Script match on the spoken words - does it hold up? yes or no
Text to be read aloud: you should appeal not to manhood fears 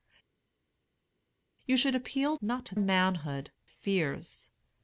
yes